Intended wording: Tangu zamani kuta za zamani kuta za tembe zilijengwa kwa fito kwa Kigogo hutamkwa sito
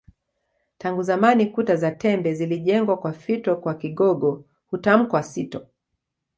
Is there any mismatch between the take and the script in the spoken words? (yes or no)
yes